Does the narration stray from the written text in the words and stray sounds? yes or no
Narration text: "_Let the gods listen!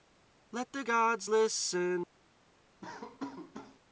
yes